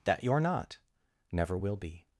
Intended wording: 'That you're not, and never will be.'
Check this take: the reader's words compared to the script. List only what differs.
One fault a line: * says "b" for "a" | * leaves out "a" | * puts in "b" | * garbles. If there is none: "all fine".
* leaves out "and"